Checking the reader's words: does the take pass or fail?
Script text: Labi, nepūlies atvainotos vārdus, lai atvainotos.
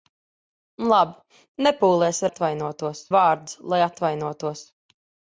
pass